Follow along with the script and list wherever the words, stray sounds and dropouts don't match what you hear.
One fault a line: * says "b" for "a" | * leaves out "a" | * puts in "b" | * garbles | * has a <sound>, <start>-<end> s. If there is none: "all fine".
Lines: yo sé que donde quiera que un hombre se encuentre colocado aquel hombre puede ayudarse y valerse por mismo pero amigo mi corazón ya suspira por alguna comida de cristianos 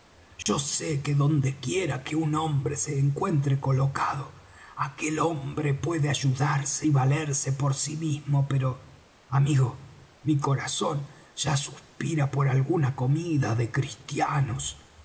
* has a dropout, 0.4-0.5 s
* puts in "sí"